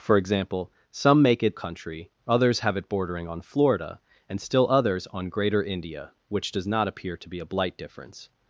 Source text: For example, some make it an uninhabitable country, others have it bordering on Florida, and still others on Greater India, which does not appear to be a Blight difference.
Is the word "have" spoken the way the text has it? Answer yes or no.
yes